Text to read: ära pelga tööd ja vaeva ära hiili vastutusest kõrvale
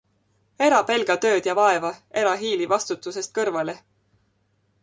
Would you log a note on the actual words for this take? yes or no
no